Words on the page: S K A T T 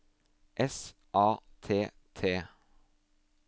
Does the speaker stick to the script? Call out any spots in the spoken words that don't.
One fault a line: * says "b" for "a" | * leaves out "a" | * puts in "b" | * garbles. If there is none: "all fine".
* leaves out "K"